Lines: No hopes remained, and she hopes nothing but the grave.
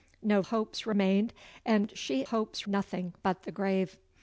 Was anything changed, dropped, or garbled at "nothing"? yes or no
no